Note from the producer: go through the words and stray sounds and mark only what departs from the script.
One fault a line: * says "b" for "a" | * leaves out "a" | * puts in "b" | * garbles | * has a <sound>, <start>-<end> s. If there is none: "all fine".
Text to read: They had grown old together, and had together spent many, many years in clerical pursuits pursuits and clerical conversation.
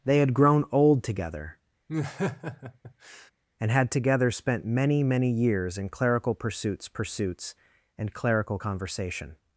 * has a laugh, 1.9-3.3 s